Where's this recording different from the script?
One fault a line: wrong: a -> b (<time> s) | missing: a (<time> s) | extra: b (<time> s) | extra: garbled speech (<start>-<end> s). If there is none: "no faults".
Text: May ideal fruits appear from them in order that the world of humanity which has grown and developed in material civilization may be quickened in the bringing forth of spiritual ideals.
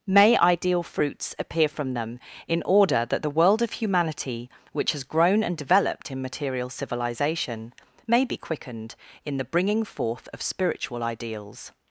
no faults